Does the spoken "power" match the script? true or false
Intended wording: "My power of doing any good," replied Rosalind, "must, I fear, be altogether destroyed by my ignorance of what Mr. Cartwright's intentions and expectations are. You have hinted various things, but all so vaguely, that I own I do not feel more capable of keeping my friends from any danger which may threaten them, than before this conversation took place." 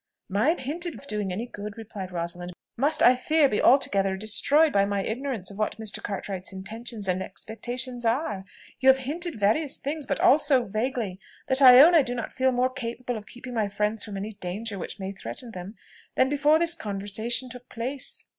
false